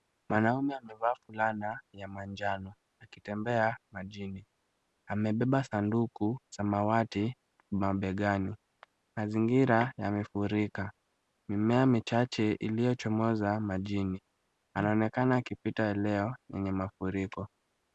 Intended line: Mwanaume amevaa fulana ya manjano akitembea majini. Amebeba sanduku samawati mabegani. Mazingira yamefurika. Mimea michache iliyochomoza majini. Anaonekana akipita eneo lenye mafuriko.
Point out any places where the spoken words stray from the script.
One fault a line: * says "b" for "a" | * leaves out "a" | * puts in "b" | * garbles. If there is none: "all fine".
all fine